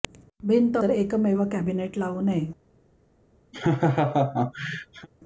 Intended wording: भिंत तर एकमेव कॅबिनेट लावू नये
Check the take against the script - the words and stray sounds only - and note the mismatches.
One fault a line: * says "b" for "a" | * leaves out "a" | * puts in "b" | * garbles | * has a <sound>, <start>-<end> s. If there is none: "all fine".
* has a laugh, 3.5-5.1 s